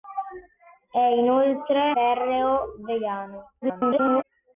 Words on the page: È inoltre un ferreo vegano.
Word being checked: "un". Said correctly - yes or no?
no